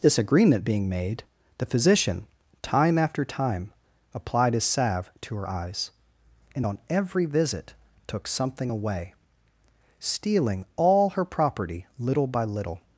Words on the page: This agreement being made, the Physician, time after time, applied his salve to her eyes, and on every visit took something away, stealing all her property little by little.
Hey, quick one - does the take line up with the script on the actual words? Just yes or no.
yes